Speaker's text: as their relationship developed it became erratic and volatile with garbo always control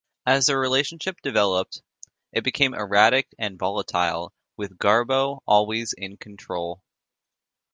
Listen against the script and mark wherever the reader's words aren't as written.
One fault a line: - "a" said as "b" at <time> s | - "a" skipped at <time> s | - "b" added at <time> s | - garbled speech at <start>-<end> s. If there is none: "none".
- "in" added at 5.9 s